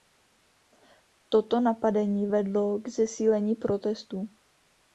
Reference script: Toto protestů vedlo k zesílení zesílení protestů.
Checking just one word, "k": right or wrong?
right